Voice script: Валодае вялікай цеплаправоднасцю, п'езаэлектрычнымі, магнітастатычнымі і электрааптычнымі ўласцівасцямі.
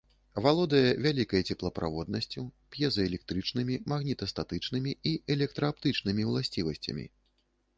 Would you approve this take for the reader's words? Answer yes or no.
yes